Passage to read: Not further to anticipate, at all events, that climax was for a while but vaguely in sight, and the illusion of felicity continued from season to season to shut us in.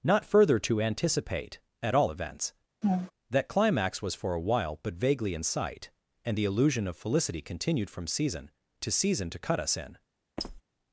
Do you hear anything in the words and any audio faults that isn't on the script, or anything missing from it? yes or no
yes